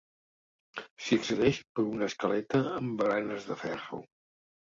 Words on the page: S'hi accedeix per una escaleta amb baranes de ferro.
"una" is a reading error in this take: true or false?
false